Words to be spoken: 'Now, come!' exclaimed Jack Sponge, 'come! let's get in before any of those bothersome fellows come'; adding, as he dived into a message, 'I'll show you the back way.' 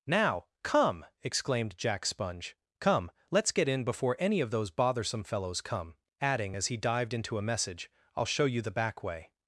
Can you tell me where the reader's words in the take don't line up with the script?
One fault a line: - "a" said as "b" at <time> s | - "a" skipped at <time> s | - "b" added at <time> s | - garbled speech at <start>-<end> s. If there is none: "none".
none